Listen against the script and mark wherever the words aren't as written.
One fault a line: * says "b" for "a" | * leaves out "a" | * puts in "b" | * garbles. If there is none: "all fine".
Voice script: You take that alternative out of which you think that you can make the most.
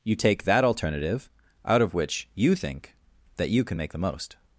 all fine